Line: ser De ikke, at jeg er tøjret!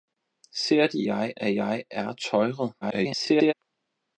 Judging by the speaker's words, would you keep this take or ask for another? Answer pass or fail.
fail